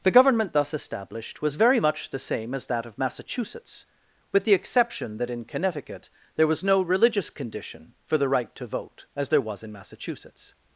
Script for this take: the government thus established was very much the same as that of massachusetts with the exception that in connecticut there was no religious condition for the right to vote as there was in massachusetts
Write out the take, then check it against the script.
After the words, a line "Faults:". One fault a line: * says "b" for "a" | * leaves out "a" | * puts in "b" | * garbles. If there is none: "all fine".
the government thus established was very much the same as that of massachusetts with the exception that in connecticut there was no religious condition for the right to vote as there was in massachusetts
Faults:
all fine